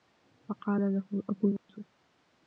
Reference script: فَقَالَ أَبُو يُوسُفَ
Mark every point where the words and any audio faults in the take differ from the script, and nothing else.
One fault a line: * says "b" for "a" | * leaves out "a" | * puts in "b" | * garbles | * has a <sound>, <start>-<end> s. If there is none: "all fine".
* puts in "لَهُ"
* has a dropout, 1.6-1.7 s